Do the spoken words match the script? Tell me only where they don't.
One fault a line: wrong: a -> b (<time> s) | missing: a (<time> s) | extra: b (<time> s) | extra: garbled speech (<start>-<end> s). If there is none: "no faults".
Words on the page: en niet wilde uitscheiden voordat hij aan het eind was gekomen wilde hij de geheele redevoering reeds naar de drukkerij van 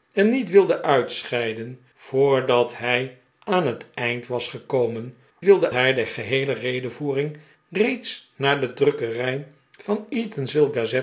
no faults